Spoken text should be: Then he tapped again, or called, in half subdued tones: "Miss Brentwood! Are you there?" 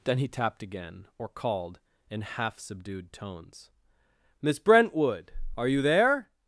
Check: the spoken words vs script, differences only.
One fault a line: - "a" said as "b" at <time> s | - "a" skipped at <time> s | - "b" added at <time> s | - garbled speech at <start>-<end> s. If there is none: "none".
none